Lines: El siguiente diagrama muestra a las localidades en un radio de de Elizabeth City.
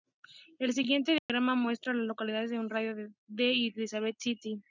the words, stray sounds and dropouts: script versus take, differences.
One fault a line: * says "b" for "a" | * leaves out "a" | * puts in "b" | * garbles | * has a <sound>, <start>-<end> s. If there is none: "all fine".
* has a dropout, 1.2-1.3 s